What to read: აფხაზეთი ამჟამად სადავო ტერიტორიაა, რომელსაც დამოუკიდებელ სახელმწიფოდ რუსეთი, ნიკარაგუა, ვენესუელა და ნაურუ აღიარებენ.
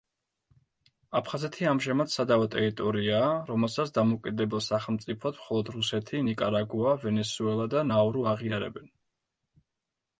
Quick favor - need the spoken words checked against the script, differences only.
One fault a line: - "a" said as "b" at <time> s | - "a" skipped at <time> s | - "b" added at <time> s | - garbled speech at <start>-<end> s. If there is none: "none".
- "მხოლოდ" added at 5.4 s